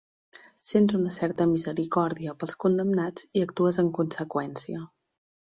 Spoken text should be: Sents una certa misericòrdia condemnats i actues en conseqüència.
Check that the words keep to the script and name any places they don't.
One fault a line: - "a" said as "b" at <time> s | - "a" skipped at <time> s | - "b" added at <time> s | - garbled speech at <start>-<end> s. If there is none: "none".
- "pels" added at 2.5 s